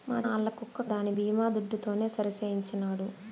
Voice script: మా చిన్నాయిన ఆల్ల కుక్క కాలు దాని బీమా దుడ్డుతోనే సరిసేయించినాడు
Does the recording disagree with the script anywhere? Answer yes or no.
yes